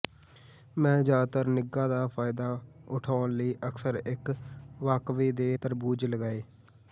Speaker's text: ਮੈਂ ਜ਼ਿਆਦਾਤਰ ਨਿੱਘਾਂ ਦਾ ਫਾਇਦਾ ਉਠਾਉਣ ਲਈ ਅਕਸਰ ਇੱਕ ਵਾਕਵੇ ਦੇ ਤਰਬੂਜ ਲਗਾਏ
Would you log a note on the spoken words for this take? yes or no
no